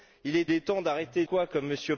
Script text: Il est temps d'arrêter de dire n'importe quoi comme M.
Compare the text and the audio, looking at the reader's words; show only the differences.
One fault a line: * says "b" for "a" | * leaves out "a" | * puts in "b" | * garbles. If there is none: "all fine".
* puts in "est"
* leaves out "de dire n'importe"